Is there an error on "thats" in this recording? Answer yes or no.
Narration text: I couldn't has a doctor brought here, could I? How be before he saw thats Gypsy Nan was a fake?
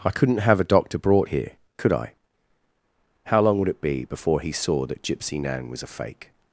yes